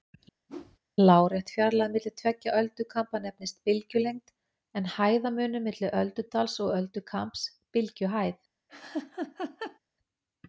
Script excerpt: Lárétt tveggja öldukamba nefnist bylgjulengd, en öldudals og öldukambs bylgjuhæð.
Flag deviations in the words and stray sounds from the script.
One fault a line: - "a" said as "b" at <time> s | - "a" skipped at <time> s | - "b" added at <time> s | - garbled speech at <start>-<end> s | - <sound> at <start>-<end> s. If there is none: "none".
- whoosh at 0.5-0.8 s
- "fjarlægð milli" added at 1.5 s
- "hæðarmunur milli" added at 5.0 s
- laugh at 8.7-9.8 s